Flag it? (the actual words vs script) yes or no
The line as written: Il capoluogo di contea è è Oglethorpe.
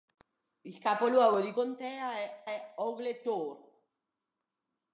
no